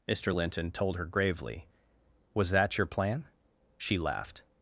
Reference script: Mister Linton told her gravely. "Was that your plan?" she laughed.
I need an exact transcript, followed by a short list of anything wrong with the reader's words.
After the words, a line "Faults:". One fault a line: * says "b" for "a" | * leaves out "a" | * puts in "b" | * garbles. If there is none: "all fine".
Mister Linton told her gravely. "Was that your plan?" she laughed.
Faults:
all fine